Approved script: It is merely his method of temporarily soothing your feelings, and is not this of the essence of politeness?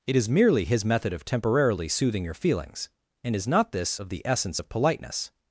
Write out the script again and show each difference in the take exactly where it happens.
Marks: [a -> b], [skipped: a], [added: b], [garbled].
It is merely his method of temporarily soothing your feelings, and is not this of the essence of politeness?